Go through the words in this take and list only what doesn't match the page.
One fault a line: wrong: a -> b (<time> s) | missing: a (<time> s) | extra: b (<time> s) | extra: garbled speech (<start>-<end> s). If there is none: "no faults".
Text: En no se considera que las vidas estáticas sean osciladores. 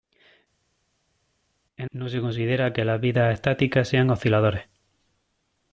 no faults